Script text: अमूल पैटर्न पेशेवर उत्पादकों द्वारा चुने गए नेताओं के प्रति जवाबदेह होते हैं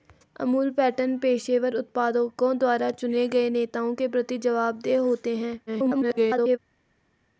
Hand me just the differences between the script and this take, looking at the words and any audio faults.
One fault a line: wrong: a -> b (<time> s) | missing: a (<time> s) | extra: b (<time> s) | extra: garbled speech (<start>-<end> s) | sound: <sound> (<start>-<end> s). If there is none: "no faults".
extra: garbled speech (5.7-6.6 s)